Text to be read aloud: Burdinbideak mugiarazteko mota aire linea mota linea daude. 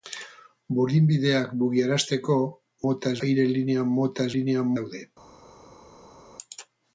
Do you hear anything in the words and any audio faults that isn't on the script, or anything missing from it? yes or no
no